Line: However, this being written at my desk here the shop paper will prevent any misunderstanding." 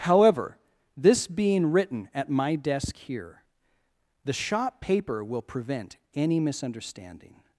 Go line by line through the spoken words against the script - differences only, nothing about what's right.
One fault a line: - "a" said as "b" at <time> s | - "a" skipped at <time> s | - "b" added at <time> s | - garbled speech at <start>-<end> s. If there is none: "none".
none